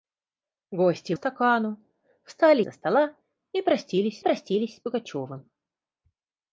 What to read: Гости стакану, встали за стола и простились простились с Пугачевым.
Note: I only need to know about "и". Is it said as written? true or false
true